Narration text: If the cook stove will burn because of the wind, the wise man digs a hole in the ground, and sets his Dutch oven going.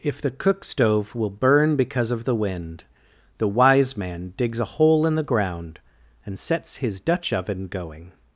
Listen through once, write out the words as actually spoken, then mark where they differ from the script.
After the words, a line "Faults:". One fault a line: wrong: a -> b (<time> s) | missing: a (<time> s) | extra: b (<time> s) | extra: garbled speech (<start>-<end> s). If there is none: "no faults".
If the cook stove will burn because of the wind, the wise man digs a hole in the ground, and sets his Dutch oven going.
Faults:
no faults